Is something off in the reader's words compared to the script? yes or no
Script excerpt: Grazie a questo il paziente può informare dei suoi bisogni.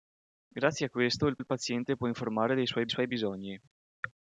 yes